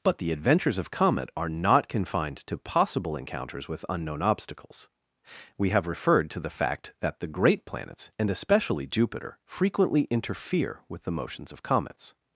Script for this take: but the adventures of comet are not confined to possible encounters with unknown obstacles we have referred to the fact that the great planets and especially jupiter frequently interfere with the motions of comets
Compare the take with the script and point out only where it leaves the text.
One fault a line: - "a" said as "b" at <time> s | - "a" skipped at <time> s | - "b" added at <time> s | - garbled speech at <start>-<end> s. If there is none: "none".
none